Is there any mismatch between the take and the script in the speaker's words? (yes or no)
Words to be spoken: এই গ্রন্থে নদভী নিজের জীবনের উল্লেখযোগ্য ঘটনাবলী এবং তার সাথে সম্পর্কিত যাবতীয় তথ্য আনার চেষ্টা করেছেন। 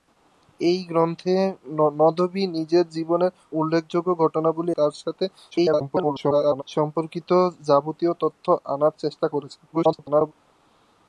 yes